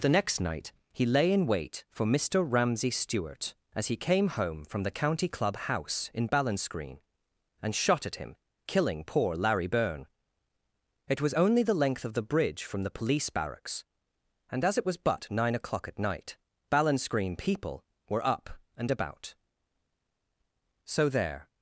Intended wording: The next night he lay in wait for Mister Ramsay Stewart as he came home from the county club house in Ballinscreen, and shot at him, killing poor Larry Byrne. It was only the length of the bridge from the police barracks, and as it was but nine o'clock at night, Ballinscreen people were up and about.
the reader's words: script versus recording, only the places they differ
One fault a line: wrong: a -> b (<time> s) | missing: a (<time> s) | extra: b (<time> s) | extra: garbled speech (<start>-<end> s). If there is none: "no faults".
extra: So there (20.9 s)